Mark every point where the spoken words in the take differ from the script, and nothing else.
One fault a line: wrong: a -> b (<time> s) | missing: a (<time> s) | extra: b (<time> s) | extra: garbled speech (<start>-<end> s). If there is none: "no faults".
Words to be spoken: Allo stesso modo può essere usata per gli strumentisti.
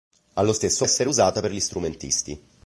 missing: modo può (0.9 s)